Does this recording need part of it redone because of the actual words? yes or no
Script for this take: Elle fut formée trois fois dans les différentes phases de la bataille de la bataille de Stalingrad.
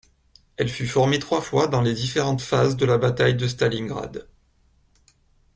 yes